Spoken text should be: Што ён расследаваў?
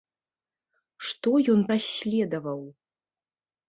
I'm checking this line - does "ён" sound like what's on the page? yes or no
yes